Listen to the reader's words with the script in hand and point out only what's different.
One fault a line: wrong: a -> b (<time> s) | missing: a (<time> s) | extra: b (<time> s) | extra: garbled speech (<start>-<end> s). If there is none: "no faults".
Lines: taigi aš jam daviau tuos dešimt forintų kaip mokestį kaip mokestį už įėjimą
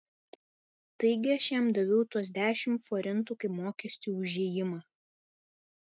missing: kaip mokestį (4.2 s)